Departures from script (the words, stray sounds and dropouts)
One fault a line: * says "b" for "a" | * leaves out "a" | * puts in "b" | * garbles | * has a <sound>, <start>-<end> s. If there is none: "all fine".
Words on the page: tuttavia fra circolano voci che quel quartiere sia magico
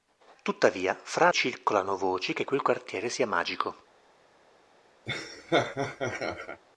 * has a laugh, 5.1-6.6 s